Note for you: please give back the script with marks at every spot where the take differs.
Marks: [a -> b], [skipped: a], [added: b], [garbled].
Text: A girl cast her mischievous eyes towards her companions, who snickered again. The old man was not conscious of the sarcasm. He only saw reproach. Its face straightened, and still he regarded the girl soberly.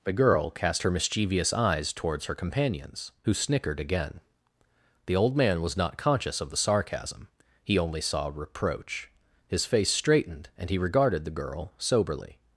[A -> The] girl cast her mischievous eyes towards her companions, who snickered again. The old man was not conscious of the sarcasm. He only saw reproach. [Its -> His] face straightened, and [skipped: still] he regarded the girl soberly.